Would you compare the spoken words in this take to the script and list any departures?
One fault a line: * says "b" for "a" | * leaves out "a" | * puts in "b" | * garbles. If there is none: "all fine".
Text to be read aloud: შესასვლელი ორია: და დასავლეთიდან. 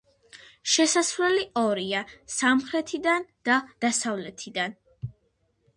* puts in "სამხრეთიდან"